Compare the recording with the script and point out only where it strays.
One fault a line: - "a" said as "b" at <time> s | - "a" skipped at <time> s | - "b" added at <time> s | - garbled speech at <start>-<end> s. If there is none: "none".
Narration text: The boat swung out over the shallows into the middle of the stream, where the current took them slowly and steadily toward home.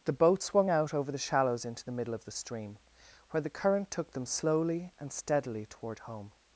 none